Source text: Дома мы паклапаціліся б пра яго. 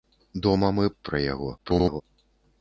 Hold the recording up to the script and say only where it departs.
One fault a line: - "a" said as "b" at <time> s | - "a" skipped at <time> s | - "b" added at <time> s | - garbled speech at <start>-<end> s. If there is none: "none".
- "паклапаціліся" skipped at 0.8 s
- garbled speech at 1.6-2.0 s